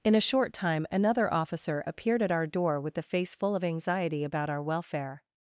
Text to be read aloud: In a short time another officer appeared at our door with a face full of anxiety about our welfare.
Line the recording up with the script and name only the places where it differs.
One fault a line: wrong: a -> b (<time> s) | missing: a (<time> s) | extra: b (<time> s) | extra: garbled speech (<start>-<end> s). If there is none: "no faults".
wrong: a -> the (3.0 s)